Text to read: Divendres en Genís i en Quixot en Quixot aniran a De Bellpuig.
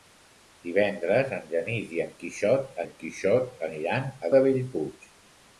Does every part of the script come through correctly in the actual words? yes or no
yes